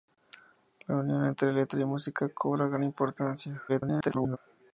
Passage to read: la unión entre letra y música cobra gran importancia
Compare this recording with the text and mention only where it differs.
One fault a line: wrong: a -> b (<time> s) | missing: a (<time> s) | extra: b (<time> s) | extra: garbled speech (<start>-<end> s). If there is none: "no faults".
extra: garbled speech (3.7-4.4 s)